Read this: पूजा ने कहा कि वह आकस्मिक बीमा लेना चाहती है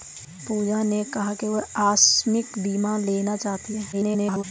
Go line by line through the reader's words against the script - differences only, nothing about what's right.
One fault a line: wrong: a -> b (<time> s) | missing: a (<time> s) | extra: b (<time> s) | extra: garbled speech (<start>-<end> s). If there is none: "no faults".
extra: garbled speech (3.9-4.4 s)